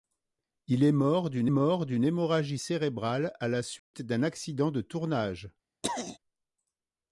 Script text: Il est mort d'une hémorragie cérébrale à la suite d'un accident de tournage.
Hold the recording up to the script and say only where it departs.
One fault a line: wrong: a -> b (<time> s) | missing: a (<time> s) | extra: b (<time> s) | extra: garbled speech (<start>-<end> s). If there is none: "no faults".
extra: mort d'une (1.5 s)